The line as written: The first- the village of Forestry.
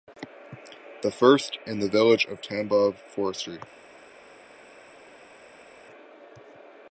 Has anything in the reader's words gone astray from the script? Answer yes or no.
yes